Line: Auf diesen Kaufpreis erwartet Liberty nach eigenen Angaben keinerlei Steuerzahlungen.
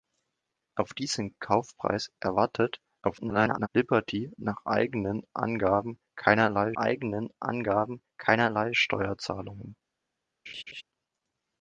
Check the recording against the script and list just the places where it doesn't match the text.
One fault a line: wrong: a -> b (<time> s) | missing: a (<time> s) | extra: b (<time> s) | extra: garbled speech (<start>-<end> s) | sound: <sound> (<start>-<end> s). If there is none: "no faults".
extra: garbled speech (3.0-3.7 s)
extra: eigenen Angaben keinerlei (6.7 s)
sound: laugh (10.5-10.8 s)